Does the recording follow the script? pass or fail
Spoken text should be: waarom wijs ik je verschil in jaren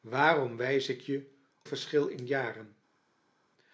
pass